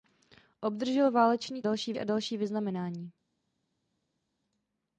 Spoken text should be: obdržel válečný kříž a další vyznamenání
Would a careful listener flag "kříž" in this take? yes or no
yes